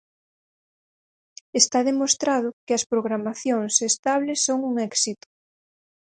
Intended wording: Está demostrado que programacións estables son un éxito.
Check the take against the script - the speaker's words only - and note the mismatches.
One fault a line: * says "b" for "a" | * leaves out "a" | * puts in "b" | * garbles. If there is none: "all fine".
* puts in "as"